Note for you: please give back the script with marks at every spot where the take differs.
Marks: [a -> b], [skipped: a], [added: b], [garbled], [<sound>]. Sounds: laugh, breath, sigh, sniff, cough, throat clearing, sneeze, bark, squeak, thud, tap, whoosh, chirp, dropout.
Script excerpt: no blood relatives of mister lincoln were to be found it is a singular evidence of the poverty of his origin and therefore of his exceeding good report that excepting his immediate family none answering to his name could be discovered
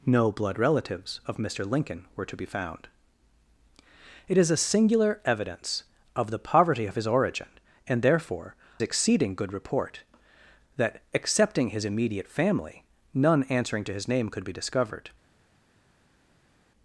no blood relatives of mister lincoln were to be found it is a singular evidence of the poverty of his origin and therefore [skipped: of his] exceeding good report that excepting his immediate family none answering to his name could be discovered